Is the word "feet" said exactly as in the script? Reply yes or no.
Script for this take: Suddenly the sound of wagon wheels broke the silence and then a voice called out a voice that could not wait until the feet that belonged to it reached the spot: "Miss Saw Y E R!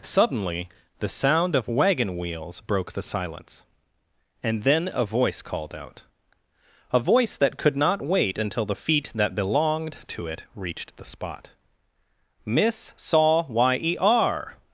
yes